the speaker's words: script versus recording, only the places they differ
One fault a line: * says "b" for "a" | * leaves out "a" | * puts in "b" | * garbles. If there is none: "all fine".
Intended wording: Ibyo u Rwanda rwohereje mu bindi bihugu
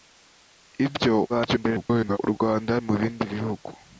* garbles
* leaves out "rwohereje"